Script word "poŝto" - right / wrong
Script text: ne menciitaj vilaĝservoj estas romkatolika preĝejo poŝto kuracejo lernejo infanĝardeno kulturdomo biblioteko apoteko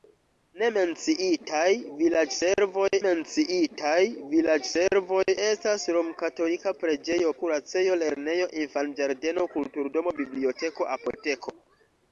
wrong